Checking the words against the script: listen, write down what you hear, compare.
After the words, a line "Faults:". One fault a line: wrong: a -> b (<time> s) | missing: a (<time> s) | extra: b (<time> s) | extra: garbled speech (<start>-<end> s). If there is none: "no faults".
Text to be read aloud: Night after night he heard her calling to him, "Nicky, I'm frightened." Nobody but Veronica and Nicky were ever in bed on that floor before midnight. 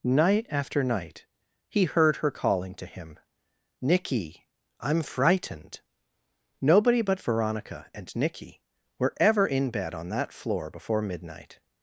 Night after night he heard her calling to him, "Nicky, I'm frightened." Nobody but Veronica and Nicky were ever in bed on that floor before midnight.
Faults:
no faults